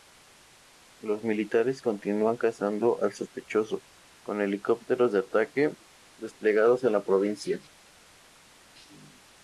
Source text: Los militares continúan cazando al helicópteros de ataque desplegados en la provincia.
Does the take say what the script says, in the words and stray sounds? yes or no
no